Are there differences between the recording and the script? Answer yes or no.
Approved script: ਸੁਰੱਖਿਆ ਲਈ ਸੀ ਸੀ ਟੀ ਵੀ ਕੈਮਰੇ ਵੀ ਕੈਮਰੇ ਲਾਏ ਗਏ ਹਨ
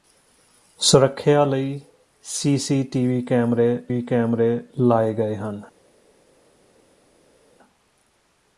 no